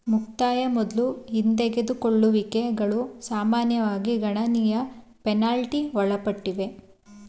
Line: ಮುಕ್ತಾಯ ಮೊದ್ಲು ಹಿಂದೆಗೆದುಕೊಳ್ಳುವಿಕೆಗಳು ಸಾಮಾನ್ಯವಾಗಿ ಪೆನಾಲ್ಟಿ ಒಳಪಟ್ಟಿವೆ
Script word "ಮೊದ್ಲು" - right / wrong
right